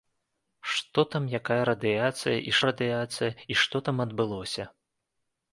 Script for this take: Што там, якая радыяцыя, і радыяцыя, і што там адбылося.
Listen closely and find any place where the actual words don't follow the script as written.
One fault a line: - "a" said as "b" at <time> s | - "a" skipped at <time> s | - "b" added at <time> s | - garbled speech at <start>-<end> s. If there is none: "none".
none